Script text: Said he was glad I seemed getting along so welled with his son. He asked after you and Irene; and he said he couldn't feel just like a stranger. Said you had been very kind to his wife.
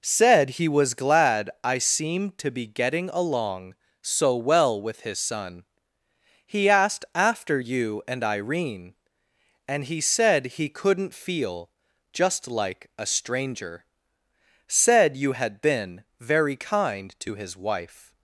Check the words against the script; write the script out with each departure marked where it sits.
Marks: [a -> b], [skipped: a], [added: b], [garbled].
Said he was glad I seemed [added: to be] getting along so [welled -> well] with his son. He asked after you and Irene; and he said he couldn't feel just like a stranger. Said you had been very kind to his wife.